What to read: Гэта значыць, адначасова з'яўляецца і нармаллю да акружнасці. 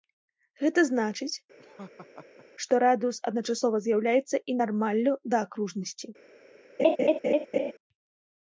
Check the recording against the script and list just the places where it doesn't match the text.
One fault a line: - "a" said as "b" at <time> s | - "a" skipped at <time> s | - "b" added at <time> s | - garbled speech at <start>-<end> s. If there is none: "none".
- "што радыус" added at 2.7 s